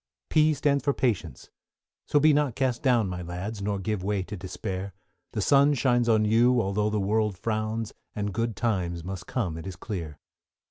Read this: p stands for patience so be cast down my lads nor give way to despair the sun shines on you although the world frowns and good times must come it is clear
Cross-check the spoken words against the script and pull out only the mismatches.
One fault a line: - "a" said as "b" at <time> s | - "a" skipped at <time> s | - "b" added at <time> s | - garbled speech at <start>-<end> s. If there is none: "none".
- "not" added at 2.3 s